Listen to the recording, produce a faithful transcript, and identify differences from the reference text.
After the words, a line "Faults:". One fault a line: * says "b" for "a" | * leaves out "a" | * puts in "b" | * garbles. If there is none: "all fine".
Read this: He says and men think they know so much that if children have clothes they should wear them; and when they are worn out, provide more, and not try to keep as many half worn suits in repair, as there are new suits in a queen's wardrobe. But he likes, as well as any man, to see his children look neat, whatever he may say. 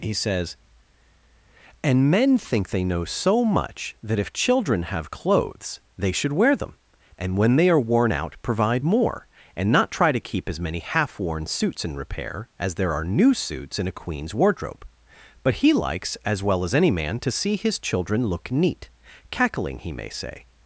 He says and men think they know so much that if children have clothes they should wear them; and when they are worn out, provide more, and not try to keep as many half worn suits in repair, as there are new suits in a queen's wardrobe. But he likes, as well as any man, to see his children look neat, cackling he may say.
Faults:
* says "cackling" for "whatever"